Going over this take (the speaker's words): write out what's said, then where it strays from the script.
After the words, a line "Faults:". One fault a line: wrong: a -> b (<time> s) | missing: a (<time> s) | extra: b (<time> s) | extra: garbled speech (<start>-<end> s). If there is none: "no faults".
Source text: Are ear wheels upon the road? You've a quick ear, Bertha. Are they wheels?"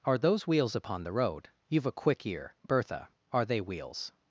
Are those wheels upon the road? You've a quick ear, Bertha. Are they wheels?"
Faults:
wrong: ear -> those (0.2 s)